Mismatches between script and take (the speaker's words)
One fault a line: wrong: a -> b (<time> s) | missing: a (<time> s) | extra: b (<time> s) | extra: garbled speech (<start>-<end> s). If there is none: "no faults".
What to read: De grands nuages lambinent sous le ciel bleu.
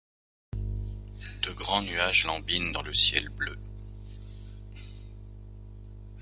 wrong: sous -> dans (2.7 s)